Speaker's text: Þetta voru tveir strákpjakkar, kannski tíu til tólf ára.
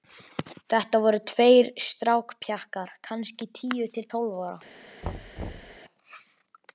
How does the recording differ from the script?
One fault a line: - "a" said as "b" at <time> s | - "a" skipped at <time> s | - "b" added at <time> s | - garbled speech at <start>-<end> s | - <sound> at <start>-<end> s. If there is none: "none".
- thud at 5.0-5.8 s